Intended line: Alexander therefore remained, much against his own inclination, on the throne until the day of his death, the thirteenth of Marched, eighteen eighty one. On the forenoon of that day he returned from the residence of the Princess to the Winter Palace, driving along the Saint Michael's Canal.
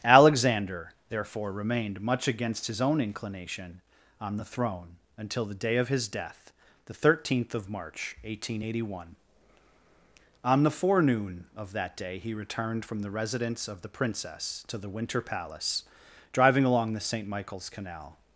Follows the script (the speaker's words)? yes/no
no